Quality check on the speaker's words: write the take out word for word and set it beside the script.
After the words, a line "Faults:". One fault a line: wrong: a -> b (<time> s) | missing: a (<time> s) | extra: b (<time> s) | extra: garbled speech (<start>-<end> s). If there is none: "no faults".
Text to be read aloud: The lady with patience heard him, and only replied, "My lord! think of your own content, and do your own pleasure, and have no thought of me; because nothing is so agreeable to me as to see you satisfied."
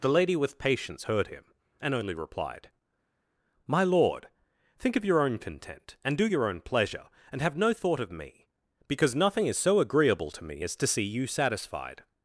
The lady with patience heard him, and only replied, "My lord! think of your own content, and do your own pleasure, and have no thought of me; because nothing is so agreeable to me as to see you satisfied."
Faults:
no faults